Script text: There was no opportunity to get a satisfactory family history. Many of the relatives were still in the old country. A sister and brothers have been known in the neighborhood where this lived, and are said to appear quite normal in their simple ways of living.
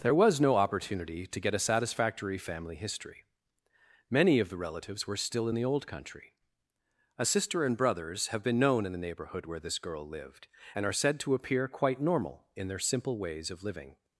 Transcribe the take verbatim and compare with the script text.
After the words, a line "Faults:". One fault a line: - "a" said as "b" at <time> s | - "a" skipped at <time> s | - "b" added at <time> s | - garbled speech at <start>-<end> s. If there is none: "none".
There was no opportunity to get a satisfactory family history. Many of the relatives were still in the old country. A sister and brothers have been known in the neighborhood where this girl lived, and are said to appear quite normal in their simple ways of living.
Faults:
- "girl" added at 9.8 s